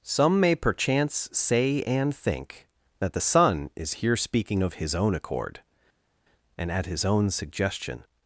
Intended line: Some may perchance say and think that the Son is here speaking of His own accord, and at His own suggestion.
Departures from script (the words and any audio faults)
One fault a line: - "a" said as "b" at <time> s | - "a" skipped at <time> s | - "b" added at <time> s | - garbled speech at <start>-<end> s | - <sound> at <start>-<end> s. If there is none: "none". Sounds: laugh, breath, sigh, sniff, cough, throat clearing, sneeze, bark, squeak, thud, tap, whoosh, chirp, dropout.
none